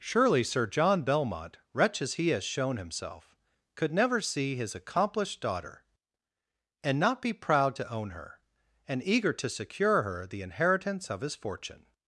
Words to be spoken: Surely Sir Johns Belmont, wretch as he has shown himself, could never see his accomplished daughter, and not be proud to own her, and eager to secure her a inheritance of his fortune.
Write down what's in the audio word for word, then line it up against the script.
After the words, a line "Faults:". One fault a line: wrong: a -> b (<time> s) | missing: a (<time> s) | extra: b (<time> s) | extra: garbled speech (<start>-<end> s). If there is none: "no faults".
Surely Sir John Belmont, wretch as he has shown himself, could never see his accomplished daughter, and not be proud to own her, and eager to secure her the inheritance of his fortune.
Faults:
wrong: Johns -> John (0.7 s)
wrong: a -> the (10.2 s)